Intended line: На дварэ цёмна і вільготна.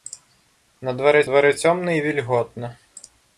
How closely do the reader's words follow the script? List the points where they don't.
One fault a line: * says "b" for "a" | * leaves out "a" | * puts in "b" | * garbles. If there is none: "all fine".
* puts in "дварэ"